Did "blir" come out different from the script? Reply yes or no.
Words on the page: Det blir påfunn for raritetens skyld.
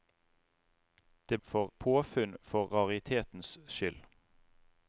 yes